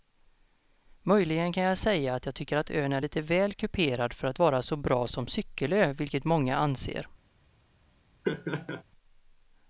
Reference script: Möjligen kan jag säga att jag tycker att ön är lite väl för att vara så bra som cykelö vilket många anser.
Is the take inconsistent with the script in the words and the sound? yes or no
yes